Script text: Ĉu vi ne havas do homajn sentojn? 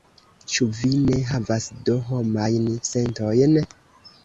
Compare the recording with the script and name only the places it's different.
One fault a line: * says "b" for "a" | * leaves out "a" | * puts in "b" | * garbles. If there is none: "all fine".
all fine